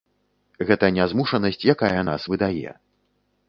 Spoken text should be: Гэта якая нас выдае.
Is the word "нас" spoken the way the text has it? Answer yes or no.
yes